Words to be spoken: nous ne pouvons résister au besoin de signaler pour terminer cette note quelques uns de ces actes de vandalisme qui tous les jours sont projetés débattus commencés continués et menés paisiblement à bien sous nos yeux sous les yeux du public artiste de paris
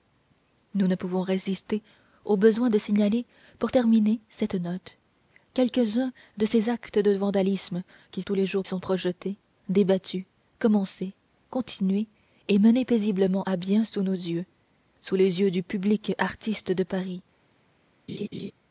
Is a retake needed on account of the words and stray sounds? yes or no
yes